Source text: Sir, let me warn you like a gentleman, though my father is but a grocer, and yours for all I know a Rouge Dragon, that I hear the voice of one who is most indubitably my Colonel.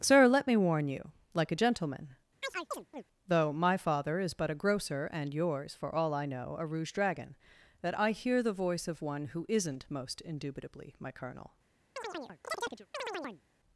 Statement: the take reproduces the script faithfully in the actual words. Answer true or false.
false